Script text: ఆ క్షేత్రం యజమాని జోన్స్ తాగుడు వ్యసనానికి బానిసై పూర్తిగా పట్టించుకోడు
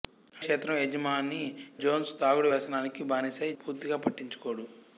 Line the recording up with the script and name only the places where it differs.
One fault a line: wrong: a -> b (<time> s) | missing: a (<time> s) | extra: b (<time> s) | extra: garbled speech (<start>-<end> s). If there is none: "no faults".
no faults